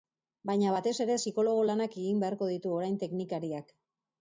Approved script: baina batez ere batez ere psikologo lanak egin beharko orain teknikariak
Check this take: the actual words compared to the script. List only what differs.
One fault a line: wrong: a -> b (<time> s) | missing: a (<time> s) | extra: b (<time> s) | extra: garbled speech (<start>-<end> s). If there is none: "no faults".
missing: batez ere (1.2 s)
extra: ditu (2.5 s)